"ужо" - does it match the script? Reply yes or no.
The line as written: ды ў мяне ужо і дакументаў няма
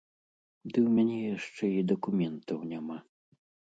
no